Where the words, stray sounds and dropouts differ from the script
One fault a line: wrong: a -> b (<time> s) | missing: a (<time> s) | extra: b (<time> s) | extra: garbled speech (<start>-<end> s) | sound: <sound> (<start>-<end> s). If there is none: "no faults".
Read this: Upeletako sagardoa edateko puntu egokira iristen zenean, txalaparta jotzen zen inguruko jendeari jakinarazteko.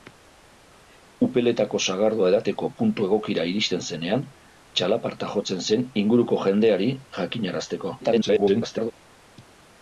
extra: garbled speech (8.0-8.9 s)